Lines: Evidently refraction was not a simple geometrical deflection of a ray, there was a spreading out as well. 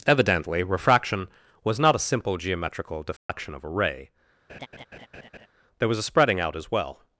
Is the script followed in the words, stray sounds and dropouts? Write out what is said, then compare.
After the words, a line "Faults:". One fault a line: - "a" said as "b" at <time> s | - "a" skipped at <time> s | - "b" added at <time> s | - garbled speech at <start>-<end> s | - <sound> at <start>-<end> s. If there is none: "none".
Evidently refraction was not a simple geometrical deflection of a ray, there was a spreading out as well.
Faults:
- dropout at 3.2-3.3 s
- laugh at 4.5-5.5 s